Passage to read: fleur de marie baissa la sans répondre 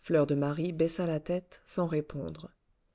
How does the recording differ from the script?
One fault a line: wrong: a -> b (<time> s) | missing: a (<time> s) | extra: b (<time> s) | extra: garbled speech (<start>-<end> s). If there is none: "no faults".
extra: tête (1.2 s)